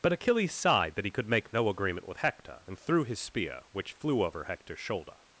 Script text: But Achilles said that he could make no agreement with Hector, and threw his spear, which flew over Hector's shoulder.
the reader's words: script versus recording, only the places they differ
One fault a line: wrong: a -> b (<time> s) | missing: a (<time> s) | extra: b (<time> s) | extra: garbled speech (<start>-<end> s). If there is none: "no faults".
wrong: said -> sighed (0.5 s)